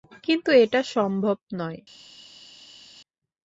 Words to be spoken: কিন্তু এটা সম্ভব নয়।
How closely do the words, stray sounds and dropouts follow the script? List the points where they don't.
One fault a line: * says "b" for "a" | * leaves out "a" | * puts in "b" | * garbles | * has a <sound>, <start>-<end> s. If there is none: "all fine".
all fine